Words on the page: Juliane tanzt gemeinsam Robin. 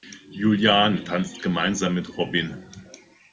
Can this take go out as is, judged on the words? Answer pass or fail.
fail